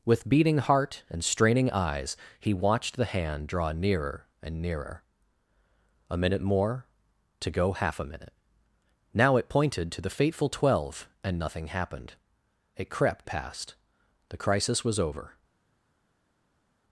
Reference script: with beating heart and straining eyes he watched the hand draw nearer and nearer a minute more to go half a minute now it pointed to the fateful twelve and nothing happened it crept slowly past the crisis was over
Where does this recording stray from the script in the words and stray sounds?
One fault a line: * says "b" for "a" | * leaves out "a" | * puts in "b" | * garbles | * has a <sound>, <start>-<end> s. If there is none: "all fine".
* leaves out "slowly"